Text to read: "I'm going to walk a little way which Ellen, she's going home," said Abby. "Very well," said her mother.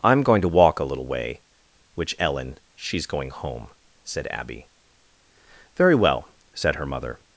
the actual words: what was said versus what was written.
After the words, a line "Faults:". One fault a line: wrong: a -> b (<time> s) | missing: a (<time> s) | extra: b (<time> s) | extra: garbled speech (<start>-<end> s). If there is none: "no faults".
"I'm going to walk a little way which Ellen, she's going home," said Abby. "Very well," said her mother.
Faults:
no faults